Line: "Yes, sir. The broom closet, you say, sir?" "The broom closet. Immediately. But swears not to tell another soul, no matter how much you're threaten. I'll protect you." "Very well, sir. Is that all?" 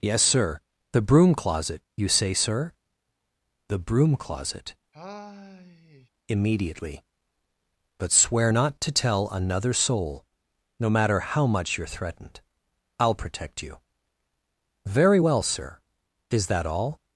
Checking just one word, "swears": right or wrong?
wrong